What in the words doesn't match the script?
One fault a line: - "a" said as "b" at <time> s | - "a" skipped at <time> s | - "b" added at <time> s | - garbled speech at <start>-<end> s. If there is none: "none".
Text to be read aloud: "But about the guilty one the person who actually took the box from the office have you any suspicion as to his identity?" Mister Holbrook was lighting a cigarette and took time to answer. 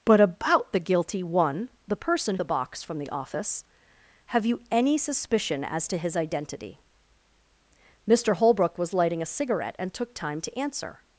- "who actually took" skipped at 2.4 s